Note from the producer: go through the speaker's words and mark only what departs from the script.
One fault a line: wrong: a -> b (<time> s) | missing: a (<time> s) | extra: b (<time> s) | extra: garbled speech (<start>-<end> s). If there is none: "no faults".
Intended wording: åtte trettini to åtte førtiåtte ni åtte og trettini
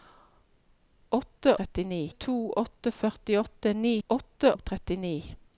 no faults